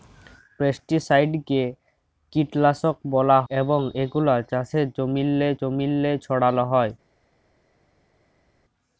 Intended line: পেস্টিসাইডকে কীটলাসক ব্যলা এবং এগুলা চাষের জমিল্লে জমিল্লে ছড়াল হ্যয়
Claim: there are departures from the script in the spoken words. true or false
false